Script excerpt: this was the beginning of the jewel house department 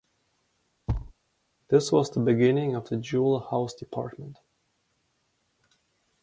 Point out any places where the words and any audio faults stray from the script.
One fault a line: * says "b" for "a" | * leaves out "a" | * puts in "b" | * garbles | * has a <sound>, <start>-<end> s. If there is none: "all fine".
* has a thud, 0.9-1.1 s